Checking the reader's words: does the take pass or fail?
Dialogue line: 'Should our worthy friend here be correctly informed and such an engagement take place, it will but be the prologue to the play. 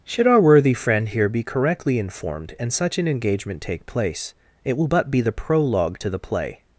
pass